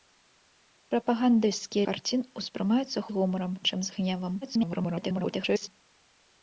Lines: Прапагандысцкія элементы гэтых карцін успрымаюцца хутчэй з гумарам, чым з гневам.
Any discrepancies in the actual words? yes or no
yes